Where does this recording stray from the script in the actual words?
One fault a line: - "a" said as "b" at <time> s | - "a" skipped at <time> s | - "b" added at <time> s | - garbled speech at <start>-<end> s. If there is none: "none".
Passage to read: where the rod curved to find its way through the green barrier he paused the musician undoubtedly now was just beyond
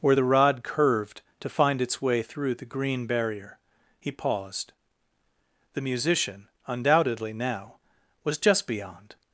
none